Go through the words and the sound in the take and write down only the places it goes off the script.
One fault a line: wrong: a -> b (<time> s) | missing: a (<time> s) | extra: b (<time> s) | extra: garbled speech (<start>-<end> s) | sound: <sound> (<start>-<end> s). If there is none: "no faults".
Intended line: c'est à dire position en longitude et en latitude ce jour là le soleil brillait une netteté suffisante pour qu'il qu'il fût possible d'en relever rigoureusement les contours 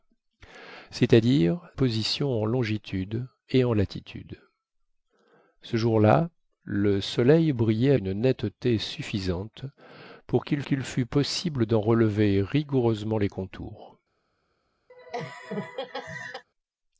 sound: laugh (14.9-16.4 s)